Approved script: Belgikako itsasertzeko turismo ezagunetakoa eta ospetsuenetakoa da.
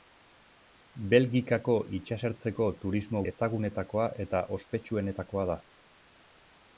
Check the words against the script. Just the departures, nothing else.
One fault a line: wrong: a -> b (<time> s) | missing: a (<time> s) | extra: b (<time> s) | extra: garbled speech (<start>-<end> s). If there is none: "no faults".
no faults